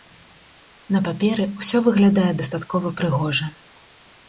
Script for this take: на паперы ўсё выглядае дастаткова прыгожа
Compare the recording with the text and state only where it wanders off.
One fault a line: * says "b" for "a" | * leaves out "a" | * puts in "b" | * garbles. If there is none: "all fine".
all fine